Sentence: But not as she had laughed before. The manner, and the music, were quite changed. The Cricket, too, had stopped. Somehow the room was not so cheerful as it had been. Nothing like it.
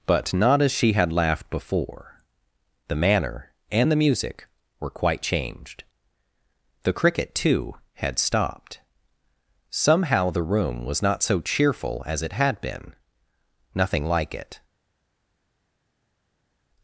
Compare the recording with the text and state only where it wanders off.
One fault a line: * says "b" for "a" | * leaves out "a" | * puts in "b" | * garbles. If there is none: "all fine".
all fine